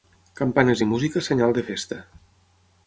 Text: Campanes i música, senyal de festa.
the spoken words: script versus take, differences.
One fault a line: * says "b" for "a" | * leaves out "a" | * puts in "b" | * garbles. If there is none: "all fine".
all fine